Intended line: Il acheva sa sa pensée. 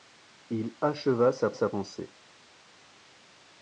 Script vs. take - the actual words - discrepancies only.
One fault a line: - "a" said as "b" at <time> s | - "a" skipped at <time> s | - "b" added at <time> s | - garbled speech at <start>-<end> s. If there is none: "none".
none